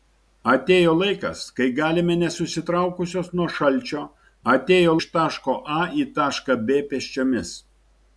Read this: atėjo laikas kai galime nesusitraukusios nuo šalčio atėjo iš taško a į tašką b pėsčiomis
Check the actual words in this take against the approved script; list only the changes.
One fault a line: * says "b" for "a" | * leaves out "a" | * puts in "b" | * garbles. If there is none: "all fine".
all fine